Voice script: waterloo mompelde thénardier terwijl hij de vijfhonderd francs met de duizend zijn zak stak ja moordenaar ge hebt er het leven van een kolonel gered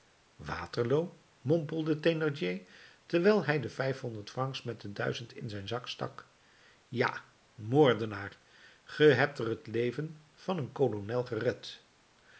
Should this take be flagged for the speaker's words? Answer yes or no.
yes